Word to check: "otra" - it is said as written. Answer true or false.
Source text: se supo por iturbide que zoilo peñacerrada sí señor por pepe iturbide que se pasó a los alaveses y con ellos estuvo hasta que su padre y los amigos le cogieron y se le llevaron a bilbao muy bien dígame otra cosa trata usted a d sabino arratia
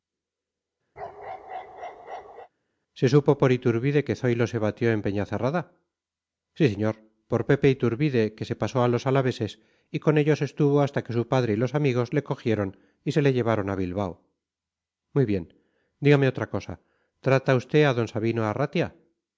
true